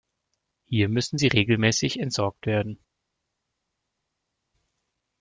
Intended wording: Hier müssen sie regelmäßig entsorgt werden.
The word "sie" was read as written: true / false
true